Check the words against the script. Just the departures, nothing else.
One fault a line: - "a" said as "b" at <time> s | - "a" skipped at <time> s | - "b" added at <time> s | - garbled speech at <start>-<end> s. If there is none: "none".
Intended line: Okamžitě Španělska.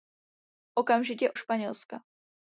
none